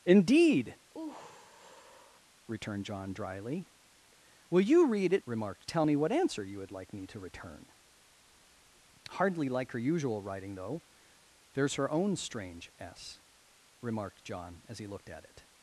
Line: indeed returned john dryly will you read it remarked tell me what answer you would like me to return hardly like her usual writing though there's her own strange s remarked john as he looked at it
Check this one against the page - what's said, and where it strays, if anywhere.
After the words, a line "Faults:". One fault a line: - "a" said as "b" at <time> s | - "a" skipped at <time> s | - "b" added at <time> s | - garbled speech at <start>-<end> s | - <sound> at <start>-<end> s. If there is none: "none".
indeed returned john dryly will you read it remarked tell me what answer you would like me to return hardly like her usual writing though there's her own strange s remarked john as he looked at it
Faults:
- sigh at 0.9-2.2 s